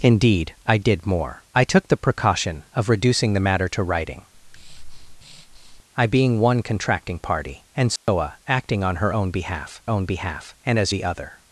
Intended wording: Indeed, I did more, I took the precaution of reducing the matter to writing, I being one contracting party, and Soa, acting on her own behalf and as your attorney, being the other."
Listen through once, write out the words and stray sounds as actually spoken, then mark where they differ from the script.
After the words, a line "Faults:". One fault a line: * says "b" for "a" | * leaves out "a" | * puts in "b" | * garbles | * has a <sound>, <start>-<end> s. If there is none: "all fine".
Indeed, I did more, I took the precaution of reducing the matter to writing, I being one contracting party, and Soa, acting on her own behalf own behalf and as the other."
Faults:
* has a breath, 4.3-5.8 s
* has a dropout, 8.0-8.1 s
* puts in "own behalf"
* leaves out "your attorney being"